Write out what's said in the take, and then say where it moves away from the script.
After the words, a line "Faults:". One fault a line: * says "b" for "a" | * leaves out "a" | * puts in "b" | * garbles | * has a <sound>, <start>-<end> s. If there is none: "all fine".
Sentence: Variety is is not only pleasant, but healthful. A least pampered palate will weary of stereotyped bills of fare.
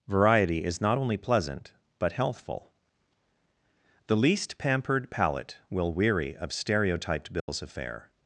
Variety is not only pleasant, but healthful. The least pampered palate will weary of stereotyped bills of fare.
Faults:
* leaves out "is"
* says "The" for "A"
* has a dropout, 7.4-7.5 s